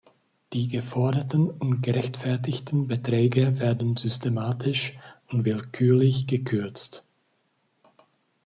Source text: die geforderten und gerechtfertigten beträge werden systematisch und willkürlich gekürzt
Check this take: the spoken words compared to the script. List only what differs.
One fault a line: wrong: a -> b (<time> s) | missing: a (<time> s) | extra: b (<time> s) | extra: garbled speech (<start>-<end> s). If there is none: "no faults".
no faults